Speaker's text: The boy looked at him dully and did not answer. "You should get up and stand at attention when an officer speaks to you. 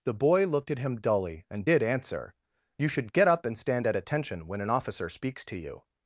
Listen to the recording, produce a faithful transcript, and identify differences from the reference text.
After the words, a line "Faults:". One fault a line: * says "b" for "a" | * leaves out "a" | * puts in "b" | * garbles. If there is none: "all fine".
The boy looked at him dully and did answer. "You should get up and stand at attention when an officer speaks to you.
Faults:
* leaves out "not"